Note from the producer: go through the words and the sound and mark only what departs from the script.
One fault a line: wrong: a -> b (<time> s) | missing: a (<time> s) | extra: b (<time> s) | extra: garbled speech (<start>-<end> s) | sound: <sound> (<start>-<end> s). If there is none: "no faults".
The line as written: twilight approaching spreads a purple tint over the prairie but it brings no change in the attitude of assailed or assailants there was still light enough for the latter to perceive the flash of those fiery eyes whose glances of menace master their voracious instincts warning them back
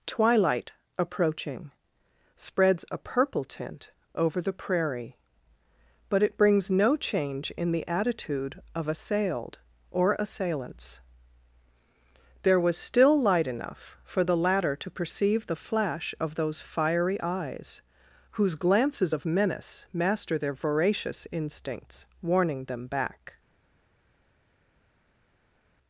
no faults